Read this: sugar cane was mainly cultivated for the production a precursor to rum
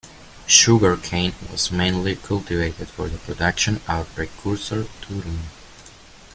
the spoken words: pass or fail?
pass